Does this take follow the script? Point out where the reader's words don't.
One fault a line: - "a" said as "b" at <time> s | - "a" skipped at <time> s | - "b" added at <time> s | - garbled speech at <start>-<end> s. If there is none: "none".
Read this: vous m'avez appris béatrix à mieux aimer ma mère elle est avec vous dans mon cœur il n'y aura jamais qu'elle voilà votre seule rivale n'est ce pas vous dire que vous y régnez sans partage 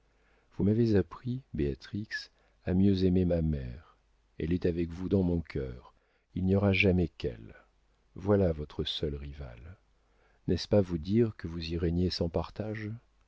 none